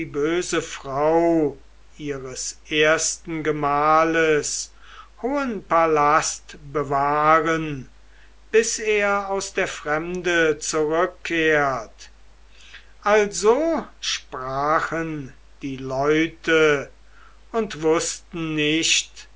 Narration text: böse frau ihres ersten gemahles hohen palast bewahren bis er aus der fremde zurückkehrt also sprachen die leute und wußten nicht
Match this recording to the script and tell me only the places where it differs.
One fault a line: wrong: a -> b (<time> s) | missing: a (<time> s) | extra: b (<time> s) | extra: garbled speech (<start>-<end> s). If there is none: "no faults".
no faults